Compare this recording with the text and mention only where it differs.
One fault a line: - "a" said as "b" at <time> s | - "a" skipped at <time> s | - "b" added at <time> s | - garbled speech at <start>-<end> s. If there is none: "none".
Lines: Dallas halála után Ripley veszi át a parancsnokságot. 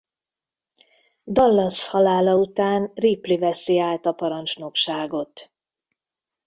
none